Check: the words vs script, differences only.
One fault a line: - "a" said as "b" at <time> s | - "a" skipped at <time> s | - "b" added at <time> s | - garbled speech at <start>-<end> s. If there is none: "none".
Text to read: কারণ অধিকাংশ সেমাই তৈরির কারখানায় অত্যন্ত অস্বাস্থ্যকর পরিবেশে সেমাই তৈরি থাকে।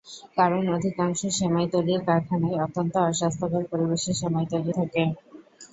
none